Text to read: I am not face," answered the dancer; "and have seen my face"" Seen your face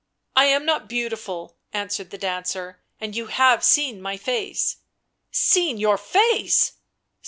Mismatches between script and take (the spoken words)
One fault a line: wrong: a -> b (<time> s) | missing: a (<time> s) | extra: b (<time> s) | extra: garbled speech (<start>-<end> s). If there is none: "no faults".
wrong: face -> beautiful (0.9 s)
extra: you (3.1 s)